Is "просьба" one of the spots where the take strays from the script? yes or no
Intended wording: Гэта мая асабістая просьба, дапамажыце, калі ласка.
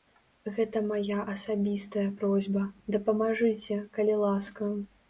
no